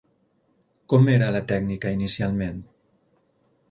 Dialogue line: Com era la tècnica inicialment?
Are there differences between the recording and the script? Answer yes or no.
no